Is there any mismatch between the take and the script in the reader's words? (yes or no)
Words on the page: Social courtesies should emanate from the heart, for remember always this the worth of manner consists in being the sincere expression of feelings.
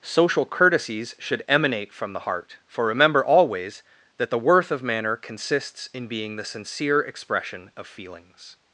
yes